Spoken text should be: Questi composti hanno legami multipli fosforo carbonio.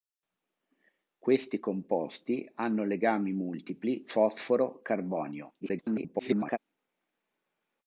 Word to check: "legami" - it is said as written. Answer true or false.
true